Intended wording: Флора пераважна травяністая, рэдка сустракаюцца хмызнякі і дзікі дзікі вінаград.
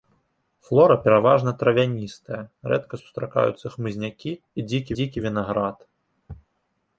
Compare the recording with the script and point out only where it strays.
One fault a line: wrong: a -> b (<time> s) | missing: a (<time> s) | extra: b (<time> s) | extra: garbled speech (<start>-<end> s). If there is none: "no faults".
no faults